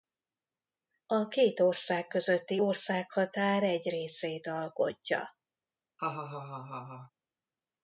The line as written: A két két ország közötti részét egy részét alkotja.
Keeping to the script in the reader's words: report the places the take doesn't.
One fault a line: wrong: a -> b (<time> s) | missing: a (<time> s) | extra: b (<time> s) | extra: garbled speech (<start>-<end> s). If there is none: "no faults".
missing: két (1.6 s)
wrong: részét -> országhatár (2.6 s)